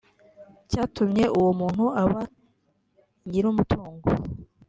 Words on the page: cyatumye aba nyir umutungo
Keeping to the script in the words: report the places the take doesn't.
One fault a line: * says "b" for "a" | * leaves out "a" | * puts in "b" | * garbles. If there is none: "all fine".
* puts in "uwo muntu"